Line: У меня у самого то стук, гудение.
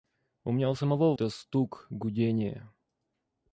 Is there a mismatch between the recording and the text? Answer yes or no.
no